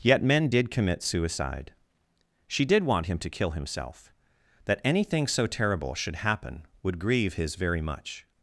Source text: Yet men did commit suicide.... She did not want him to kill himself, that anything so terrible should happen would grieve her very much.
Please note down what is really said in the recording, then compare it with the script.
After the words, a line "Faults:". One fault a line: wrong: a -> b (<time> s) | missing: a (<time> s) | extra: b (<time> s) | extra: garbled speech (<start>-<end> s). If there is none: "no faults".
Yet men did commit suicide.... She did want him to kill himself, that anything so terrible should happen would grieve his very much.
Faults:
missing: not (2.8 s)
wrong: her -> his (7.3 s)